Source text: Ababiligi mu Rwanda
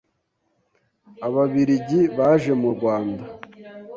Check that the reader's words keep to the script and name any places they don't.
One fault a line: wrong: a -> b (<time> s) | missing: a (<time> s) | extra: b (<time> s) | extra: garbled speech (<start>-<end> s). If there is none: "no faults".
extra: baje (2.2 s)